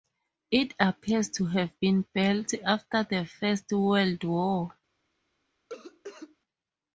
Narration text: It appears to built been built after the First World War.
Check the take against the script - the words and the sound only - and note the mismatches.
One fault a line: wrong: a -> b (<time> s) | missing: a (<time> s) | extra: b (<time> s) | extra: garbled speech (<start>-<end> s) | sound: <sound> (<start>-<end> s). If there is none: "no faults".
wrong: built -> have (1.4 s)
sound: cough (5.7-6.4 s)